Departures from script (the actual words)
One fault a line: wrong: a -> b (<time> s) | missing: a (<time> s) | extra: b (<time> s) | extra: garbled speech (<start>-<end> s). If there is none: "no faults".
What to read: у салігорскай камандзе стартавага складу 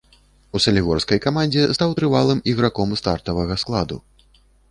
extra: стаў трывалым іграком (1.8 s)